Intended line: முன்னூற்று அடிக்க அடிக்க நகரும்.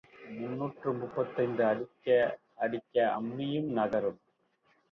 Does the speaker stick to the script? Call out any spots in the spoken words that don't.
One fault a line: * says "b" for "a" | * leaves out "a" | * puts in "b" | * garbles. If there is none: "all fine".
* puts in "முப்பத்தைந்து"
* puts in "அம்மியும்"